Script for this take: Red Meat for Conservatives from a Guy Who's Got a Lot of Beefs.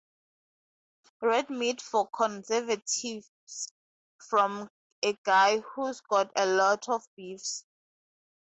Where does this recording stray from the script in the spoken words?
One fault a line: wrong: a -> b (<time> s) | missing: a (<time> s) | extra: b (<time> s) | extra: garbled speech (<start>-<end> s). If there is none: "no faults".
no faults